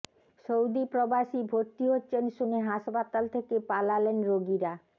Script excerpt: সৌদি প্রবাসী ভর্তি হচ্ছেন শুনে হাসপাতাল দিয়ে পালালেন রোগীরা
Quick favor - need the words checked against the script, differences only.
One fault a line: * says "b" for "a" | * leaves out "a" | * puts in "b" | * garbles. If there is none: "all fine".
* says "থেকে" for "দিয়ে"